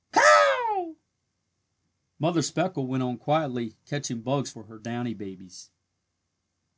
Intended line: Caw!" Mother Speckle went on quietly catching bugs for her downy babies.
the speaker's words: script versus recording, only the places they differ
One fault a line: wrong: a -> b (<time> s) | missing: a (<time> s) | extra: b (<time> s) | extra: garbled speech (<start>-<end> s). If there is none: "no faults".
no faults